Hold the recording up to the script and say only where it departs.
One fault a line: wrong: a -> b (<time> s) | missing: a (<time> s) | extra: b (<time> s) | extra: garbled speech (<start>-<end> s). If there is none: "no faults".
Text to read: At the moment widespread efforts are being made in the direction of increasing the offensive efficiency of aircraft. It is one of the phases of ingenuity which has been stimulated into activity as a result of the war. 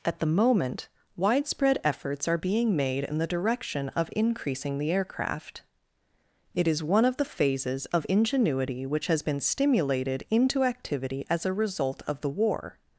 missing: offensive efficiency of (4.9 s)